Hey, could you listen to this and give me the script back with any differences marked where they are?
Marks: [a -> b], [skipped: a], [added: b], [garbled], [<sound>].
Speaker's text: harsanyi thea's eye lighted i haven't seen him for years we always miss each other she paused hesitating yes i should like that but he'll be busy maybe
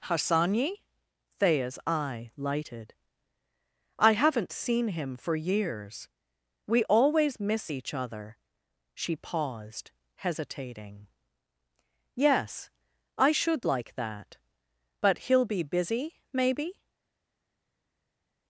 harsanyi thea's eye lighted i haven't seen him for years we always miss each other she paused hesitating yes i should like that but he'll be busy maybe